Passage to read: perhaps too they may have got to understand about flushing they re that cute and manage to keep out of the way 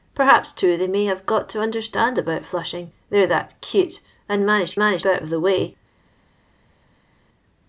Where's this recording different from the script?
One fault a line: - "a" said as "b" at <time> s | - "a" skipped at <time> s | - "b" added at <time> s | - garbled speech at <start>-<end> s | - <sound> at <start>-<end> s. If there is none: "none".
- "keep" said as "manage" at 4.8 s